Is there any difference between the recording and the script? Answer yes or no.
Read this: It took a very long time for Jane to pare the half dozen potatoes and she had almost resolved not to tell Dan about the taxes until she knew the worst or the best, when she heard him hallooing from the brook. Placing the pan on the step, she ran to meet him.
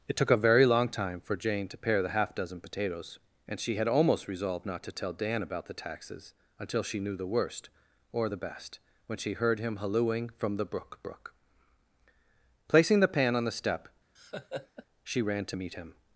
yes